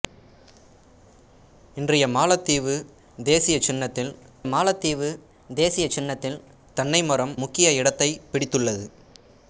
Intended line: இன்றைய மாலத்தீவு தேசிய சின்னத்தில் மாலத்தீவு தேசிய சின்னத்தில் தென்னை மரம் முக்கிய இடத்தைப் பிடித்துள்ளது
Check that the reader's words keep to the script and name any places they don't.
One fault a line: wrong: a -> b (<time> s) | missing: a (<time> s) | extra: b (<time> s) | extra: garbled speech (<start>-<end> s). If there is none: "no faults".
no faults